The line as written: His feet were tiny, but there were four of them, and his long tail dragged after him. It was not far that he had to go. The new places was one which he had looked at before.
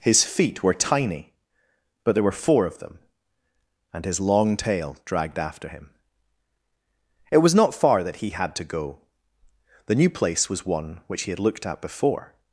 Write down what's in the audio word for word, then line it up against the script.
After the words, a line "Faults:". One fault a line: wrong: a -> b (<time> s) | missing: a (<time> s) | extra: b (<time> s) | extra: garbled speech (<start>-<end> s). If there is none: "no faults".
His feet were tiny, but there were four of them, and his long tail dragged after him. It was not far that he had to go. The new place was one which he had looked at before.
Faults:
wrong: places -> place (10.1 s)